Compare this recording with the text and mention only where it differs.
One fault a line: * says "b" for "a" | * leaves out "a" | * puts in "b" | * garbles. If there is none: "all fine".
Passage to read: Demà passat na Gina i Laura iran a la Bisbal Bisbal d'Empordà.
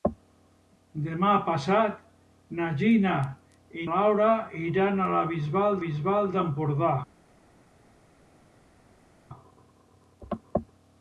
all fine